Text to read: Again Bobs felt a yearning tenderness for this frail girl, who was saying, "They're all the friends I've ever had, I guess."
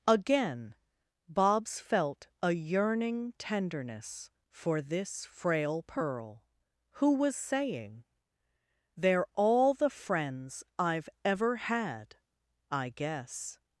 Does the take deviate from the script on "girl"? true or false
true